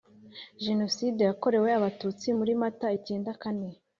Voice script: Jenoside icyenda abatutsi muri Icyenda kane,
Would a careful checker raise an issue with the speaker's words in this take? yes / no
yes